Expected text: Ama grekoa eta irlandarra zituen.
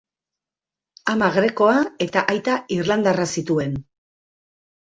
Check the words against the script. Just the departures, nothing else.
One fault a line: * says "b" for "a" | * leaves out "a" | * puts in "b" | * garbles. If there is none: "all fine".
* puts in "aita"